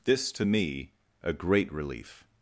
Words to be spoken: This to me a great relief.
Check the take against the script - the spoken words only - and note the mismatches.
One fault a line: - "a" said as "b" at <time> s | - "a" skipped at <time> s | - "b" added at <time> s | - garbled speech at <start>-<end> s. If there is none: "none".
none